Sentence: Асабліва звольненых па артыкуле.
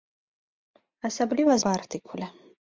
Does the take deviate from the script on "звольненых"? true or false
true